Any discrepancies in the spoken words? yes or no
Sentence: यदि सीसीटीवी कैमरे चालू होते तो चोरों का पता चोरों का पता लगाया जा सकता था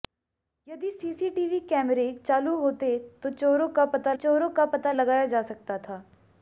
no